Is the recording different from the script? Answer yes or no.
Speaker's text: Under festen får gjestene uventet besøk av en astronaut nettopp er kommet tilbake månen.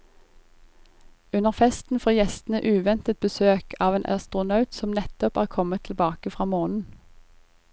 yes